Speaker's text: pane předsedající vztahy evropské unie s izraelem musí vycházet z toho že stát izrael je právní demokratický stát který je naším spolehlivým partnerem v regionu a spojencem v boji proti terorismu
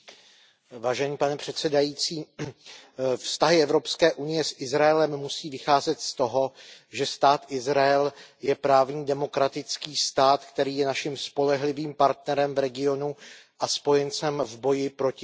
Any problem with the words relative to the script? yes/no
no